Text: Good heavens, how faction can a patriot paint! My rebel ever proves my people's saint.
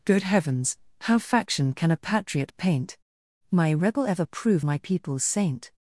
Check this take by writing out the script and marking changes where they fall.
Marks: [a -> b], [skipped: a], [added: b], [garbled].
Good heavens, how faction can a patriot paint! My rebel ever [proves -> prove] my people's saint.